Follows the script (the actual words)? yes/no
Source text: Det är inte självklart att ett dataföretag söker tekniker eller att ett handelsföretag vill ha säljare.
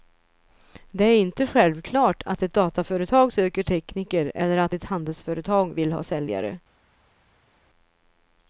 yes